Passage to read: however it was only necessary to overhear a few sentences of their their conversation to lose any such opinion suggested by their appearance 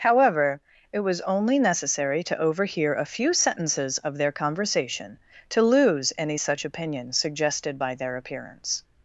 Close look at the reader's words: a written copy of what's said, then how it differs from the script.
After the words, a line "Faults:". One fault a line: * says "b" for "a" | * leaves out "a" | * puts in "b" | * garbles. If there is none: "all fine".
however it was only necessary to overhear a few sentences of their conversation to lose any such opinion suggested by their appearance
Faults:
* leaves out "their"